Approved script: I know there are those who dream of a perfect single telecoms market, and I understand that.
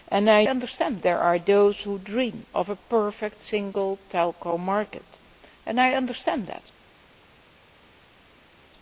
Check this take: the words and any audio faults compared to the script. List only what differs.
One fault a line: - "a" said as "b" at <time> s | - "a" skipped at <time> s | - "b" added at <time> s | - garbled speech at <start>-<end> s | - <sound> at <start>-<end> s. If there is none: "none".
- "know" said as "understand" at 0.5 s